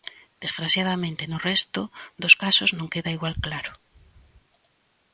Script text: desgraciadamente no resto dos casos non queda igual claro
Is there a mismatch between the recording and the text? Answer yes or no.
no